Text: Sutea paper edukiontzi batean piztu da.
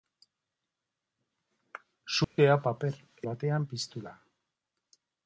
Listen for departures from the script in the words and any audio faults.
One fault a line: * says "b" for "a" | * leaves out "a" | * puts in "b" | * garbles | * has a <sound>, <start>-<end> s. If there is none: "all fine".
* has a dropout, 2.2-2.4 s
* leaves out "edukiontzi"